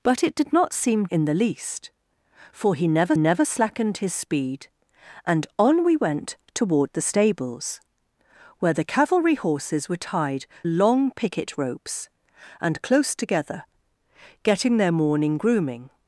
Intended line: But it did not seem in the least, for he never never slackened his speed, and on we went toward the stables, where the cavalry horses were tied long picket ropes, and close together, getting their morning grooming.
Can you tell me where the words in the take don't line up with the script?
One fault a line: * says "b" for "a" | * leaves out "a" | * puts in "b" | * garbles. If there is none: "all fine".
all fine